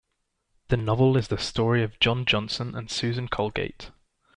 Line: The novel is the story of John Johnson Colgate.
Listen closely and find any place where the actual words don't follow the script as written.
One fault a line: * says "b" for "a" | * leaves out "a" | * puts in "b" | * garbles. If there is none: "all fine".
* puts in "and Susan"